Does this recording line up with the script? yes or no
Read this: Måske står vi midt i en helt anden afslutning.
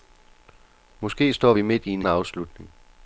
no